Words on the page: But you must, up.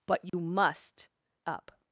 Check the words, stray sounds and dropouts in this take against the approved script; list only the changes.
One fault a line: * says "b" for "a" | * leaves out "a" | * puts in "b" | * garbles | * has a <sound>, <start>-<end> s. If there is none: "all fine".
* has a dropout, 0.3-0.3 s